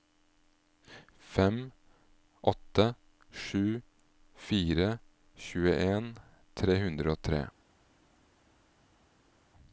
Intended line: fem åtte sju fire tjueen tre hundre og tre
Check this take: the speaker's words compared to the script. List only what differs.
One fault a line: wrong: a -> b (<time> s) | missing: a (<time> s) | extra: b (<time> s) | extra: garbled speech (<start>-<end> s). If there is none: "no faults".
no faults